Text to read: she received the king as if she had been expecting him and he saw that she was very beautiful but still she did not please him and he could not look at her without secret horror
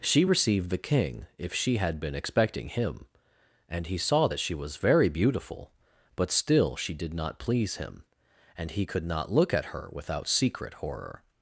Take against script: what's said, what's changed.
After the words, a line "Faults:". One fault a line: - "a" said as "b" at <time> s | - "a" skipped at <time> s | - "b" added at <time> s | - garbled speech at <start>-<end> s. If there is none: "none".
she received the king if she had been expecting him and he saw that she was very beautiful but still she did not please him and he could not look at her without secret horror
Faults:
- "as" skipped at 1.3 s